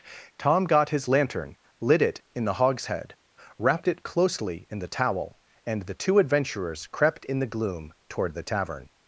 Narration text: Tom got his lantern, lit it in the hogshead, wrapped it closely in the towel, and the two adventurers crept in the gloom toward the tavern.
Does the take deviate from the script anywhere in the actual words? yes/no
no